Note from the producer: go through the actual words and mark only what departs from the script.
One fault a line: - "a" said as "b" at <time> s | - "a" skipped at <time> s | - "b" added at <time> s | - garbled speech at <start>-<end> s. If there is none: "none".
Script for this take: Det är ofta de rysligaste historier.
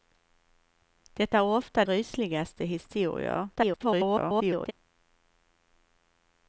- "de" skipped at 1.9 s
- garbled speech at 3.6-4.7 s